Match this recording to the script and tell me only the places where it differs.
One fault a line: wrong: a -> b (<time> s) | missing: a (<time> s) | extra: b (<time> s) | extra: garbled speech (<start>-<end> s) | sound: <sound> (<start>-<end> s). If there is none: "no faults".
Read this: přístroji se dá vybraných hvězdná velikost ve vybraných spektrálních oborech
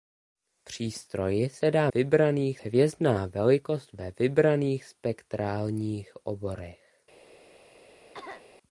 sound: cough (8.1-8.5 s)